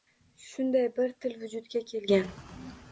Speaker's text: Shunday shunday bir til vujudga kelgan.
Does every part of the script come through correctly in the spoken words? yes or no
no